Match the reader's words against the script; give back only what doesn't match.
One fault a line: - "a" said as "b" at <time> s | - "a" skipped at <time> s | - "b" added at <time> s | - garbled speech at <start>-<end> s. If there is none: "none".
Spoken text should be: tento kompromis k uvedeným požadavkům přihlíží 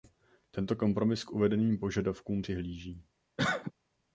none